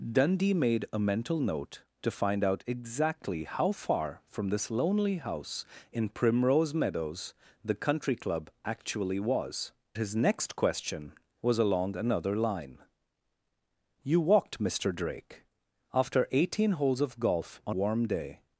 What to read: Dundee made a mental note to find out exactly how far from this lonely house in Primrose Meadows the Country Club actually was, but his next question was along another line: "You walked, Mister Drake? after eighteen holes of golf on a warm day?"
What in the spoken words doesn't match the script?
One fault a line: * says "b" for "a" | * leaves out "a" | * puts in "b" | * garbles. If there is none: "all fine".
* leaves out "but"
* leaves out "a"